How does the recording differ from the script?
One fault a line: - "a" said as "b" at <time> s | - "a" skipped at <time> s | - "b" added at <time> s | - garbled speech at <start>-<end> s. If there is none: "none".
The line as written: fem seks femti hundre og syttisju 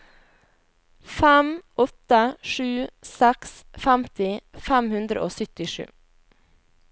- "åtte sju" added at 1.8 s
- "fem" added at 4.7 s